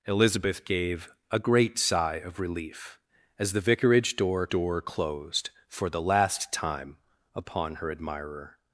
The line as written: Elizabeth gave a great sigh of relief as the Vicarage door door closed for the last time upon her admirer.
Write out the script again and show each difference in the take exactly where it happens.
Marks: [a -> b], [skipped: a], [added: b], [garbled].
Elizabeth gave a great sigh of relief as the Vicarage door door closed for the last time upon her admirer.